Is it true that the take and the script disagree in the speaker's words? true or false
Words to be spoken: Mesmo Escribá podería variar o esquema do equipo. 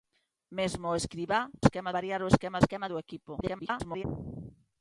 true